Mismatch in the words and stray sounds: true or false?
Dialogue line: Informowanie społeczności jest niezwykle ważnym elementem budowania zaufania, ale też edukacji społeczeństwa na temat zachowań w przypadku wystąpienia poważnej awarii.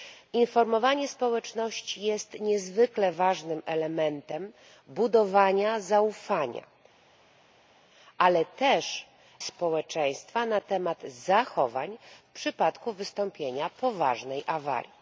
true